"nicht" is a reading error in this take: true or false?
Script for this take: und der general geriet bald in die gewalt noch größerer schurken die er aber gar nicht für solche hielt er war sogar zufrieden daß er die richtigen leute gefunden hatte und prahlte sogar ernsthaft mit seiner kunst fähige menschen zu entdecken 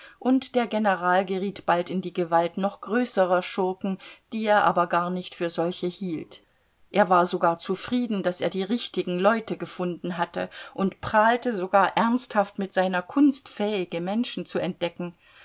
false